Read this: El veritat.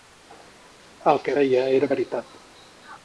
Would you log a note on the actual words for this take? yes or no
yes